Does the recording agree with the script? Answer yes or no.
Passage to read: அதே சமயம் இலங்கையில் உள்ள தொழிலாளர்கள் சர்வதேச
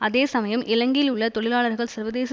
yes